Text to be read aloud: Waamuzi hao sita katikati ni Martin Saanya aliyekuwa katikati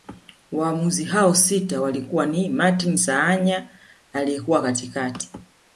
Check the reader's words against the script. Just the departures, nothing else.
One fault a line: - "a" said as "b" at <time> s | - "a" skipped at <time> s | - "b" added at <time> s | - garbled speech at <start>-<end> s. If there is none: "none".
- "katikati" said as "walikuwa" at 1.8 s